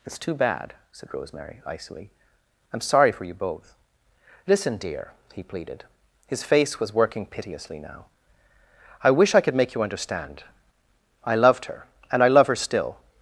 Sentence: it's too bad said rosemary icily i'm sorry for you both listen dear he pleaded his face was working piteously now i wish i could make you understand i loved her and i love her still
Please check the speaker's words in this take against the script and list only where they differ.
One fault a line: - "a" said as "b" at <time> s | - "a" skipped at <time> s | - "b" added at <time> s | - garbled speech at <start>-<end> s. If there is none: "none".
none